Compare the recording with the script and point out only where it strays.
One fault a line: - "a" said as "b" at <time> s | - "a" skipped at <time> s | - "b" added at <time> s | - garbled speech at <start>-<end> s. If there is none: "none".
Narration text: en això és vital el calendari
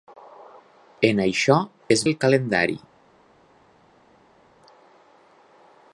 - "vital" skipped at 2.1 s